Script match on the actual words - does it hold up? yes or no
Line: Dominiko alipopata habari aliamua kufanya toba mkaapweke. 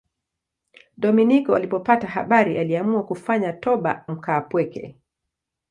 yes